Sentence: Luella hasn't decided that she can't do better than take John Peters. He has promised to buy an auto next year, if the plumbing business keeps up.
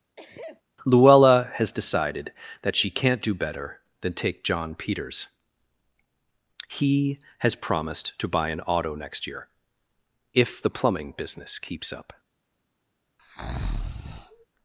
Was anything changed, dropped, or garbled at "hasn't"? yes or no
yes